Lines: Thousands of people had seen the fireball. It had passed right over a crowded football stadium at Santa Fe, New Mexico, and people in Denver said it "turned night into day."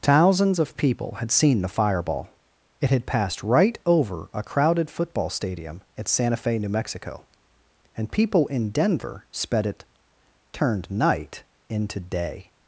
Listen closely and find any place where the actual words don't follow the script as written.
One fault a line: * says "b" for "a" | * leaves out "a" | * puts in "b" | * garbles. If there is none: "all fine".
* says "sped" for "said"